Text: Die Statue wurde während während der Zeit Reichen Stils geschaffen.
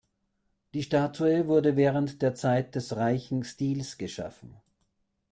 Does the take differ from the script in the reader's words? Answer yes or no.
yes